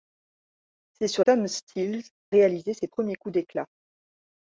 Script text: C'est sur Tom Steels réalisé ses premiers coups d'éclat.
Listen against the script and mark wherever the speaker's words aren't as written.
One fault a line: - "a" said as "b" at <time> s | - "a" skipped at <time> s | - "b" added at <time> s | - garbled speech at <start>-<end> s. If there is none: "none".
none